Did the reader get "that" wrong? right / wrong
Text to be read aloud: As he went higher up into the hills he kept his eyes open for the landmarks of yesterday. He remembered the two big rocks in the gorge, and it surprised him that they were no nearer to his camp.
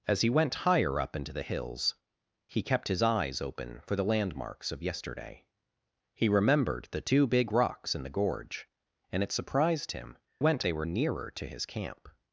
wrong